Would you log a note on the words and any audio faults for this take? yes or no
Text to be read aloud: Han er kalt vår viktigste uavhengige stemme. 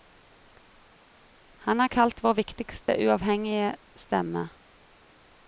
yes